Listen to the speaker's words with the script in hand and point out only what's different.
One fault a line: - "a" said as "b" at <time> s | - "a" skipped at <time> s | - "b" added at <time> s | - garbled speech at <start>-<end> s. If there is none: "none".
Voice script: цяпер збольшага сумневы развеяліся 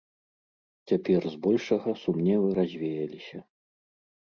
none